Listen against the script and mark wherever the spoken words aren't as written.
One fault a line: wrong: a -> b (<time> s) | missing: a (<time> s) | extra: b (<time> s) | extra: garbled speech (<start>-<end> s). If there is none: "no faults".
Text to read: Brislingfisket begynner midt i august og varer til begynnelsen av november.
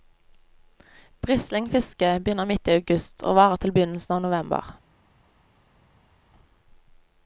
no faults